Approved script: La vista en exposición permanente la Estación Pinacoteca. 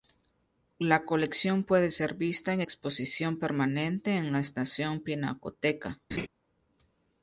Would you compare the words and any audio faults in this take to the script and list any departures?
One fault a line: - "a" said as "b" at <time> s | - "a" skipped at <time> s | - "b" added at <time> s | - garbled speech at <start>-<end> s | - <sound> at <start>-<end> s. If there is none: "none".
- "colección puede ser" added at 1.1 s
- "en" added at 4.2 s
- laugh at 6.1-6.3 s